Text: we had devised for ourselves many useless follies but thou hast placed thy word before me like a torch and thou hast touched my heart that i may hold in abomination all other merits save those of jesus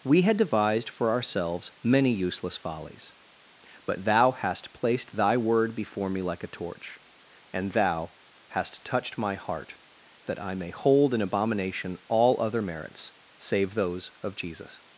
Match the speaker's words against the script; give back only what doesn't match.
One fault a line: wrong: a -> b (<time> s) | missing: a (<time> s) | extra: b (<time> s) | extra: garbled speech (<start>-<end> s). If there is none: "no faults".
no faults